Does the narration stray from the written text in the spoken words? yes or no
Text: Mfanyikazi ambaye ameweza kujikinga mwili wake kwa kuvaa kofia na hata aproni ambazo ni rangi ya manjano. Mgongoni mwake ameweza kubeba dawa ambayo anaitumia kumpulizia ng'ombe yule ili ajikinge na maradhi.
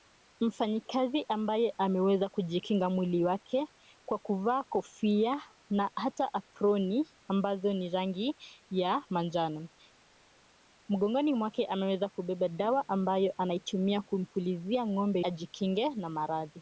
yes